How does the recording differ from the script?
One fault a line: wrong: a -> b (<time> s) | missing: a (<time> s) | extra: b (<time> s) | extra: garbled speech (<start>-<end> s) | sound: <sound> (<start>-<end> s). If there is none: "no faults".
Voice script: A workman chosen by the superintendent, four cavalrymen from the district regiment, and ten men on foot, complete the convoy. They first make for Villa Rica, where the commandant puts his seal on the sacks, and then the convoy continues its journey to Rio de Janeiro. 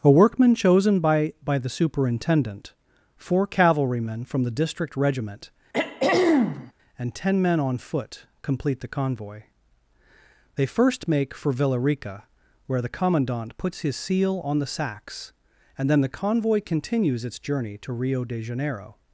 extra: by (1.4 s)
sound: throat clearing (5.7-6.7 s)